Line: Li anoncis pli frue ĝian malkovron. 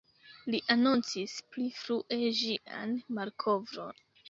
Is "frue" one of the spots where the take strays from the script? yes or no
no